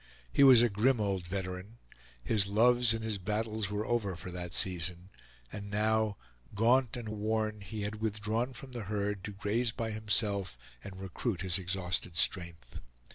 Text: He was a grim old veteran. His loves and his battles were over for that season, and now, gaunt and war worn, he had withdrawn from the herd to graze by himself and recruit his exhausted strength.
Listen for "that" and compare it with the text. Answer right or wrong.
right